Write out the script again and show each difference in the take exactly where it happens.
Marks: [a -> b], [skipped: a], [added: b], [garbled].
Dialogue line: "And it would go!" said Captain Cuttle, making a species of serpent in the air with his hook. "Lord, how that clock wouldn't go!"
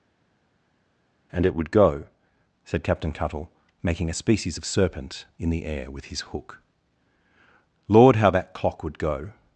"And it would go!" said Captain Cuttle, making a species of serpent in the air with his hook. "Lord, how that clock [wouldn't -> would] go!"